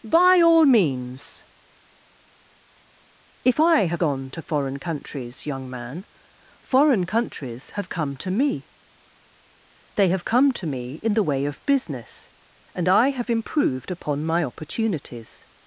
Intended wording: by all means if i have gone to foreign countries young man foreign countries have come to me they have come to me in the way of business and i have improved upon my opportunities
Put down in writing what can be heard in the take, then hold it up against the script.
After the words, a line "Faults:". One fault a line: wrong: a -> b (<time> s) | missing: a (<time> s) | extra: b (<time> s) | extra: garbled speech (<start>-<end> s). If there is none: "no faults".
by all means if i have gone to foreign countries young man foreign countries have come to me they have come to me in the way of business and i have improved upon my opportunities
Faults:
no faults